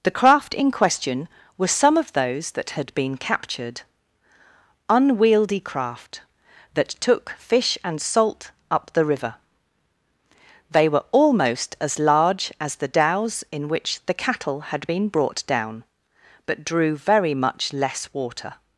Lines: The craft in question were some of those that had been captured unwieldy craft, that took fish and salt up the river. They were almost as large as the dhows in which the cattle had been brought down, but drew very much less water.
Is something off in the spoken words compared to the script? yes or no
no